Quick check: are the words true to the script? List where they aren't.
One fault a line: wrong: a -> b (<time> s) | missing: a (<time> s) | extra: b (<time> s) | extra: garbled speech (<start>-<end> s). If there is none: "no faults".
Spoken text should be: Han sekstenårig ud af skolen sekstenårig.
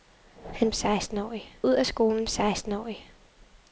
no faults